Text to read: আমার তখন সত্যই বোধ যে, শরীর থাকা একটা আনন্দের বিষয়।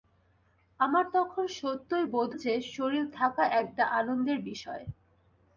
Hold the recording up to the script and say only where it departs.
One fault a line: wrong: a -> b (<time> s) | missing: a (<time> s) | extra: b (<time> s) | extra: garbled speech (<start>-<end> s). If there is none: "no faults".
no faults